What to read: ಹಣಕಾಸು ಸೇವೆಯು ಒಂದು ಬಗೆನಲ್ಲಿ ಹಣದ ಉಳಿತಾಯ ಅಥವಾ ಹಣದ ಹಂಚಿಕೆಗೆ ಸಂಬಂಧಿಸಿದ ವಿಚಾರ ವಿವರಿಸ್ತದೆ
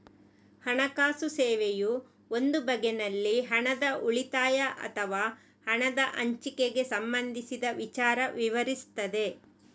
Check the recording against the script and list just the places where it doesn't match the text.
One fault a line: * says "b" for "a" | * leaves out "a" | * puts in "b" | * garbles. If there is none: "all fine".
all fine